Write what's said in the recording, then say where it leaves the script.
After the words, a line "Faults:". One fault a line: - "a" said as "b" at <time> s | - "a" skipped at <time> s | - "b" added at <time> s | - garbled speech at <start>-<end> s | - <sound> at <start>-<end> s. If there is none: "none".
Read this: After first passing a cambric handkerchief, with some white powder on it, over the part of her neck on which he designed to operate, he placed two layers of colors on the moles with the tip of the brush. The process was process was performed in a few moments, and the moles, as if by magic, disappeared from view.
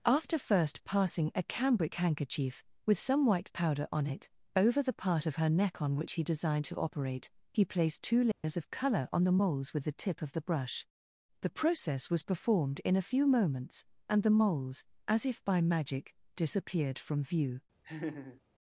After first passing a cambric handkerchief, with some white powder on it, over the part of her neck on which he designed to operate, he placed two layers of color on the moles with the tip of the brush. The process was performed in a few moments, and the moles, as if by magic, disappeared from view.
Faults:
- dropout at 8.3-8.4 s
- "colors" said as "color" at 8.7 s
- "process was" skipped at 12.2 s
- laugh at 17.8-18.4 s